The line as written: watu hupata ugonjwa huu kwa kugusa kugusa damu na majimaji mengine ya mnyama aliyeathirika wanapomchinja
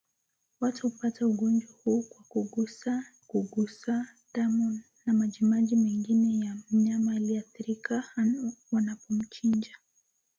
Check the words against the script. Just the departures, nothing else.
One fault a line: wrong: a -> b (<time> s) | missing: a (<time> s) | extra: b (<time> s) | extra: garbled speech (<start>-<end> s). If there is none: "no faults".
no faults